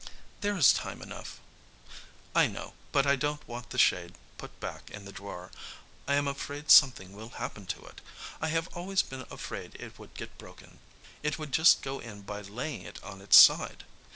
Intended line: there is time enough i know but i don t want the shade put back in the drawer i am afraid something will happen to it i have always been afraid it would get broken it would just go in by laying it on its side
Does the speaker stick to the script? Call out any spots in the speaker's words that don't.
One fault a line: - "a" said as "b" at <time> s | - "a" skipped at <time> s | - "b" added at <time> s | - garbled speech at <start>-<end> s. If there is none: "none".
none